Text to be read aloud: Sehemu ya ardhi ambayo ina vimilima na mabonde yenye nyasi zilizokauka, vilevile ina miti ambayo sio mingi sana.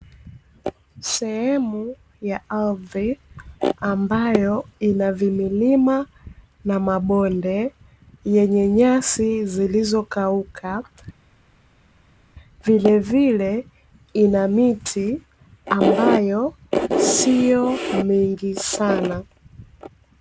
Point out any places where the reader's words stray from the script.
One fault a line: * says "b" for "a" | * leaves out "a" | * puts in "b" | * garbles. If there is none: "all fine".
all fine